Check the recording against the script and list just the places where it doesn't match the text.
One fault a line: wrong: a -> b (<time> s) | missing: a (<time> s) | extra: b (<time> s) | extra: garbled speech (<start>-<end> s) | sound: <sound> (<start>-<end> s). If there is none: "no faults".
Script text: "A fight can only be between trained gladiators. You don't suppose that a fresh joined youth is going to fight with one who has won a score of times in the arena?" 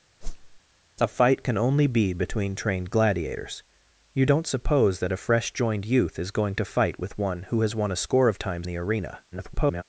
sound: whoosh (0.2-0.6 s)
missing: in (8.7 s)
extra: garbled speech (9.3-9.8 s)